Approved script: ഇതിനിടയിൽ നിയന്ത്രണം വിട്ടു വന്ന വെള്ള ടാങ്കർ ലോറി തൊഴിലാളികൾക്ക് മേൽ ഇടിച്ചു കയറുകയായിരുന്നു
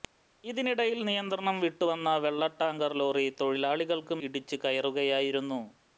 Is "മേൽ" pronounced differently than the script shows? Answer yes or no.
yes